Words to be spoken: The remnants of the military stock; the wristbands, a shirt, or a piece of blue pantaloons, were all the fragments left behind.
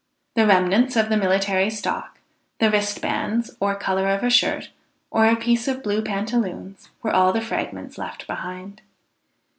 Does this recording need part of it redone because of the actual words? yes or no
yes